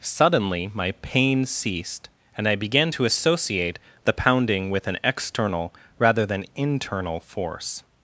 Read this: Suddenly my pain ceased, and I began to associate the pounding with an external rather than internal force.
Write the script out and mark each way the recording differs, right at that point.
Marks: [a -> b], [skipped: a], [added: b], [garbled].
Suddenly my pain ceased, and I began to associate the pounding with an external rather than internal force.